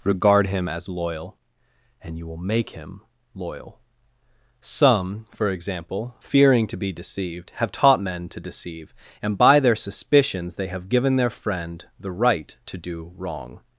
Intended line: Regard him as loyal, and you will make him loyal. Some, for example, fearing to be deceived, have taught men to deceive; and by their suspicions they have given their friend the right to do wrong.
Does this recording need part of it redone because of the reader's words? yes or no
no